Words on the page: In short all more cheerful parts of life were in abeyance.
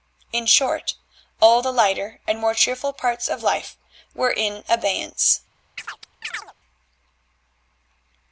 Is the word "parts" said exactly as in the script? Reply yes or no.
yes